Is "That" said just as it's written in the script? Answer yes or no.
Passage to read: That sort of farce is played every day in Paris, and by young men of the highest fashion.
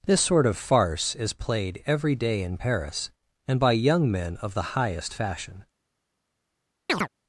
no